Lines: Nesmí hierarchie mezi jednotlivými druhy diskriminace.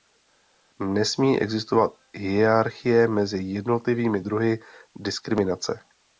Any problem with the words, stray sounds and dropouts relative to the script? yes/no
yes